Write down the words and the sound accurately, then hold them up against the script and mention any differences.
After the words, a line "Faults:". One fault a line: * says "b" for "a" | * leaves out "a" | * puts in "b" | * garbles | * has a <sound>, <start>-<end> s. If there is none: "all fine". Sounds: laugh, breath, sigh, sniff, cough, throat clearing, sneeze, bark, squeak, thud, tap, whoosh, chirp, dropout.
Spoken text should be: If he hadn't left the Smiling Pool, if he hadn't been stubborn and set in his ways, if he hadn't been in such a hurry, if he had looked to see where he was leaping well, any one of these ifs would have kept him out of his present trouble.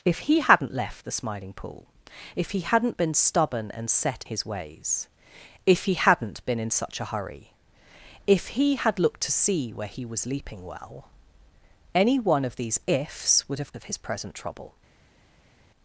If he hadn't left the Smiling Pool, if he hadn't been stubborn and set his ways, if he hadn't been in such a hurry, if he had looked to see where he was leaping well, any one of these ifs would have of his present trouble.
Faults:
* leaves out "in"
* leaves out "kept him out"